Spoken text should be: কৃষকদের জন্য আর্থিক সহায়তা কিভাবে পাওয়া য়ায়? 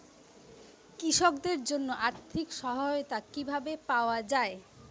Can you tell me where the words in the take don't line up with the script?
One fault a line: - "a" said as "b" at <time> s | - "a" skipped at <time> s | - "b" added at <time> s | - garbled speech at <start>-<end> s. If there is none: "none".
none